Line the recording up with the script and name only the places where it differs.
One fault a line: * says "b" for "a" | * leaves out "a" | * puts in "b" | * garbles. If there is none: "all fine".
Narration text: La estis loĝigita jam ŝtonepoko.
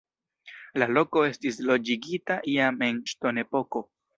* puts in "loko"
* puts in "en"